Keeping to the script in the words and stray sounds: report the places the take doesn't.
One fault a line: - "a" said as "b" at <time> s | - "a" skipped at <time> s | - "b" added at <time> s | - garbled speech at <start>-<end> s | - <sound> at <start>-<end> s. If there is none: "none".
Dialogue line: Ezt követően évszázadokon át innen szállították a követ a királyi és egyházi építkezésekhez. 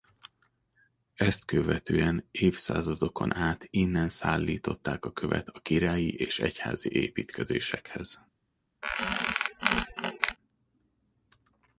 - squeak at 8.8-10.4 s